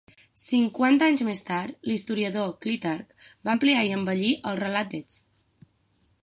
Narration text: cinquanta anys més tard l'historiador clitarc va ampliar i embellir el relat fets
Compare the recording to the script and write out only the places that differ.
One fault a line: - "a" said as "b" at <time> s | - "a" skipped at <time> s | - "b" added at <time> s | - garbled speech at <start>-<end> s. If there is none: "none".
none